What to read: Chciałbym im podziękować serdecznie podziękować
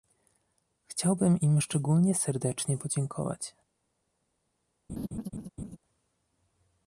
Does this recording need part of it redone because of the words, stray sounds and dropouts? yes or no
yes